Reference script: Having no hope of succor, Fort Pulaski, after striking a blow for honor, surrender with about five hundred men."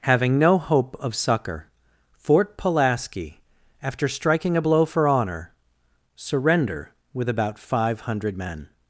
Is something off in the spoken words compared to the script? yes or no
no